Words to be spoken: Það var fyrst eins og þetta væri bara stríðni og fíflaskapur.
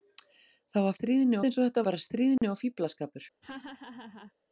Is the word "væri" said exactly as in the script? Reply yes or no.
no